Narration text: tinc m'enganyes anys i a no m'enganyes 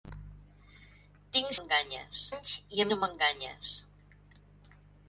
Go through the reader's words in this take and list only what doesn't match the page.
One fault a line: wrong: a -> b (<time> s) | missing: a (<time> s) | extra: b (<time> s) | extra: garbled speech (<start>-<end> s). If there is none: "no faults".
no faults